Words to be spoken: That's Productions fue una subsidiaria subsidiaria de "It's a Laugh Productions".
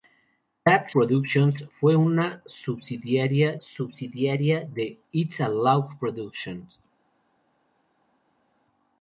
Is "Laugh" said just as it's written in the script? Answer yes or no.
yes